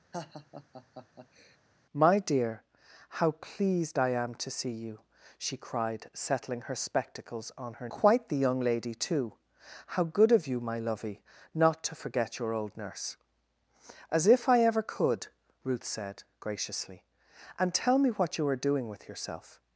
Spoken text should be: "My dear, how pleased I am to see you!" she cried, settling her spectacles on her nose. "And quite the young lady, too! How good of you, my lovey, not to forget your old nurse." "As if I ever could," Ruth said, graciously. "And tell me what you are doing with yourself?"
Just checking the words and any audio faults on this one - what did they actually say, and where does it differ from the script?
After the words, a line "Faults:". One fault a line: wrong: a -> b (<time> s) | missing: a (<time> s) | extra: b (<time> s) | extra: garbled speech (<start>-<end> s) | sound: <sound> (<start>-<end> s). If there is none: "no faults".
"My dear, how pleased I am to see you!" she cried, settling her spectacles on her quite the young lady, too! How good of you, my lovey, not to forget your old nurse." "As if I ever could," Ruth said, graciously. "And tell me what you are doing with yourself?"
Faults:
sound: laugh (0.1-1.6 s)
missing: nose And (7.9 s)